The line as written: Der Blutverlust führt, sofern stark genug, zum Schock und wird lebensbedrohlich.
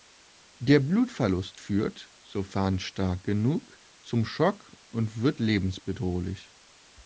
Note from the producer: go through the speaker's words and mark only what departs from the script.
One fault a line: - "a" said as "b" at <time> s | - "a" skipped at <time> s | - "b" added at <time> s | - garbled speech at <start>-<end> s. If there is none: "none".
none